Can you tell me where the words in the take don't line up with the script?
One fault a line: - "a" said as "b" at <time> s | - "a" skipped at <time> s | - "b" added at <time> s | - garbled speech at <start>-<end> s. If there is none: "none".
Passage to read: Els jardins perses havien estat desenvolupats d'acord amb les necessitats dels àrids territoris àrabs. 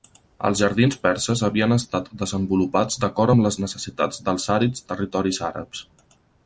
none